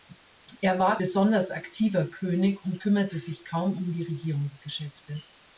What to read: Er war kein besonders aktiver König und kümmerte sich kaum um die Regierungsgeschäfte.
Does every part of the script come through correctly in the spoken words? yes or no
no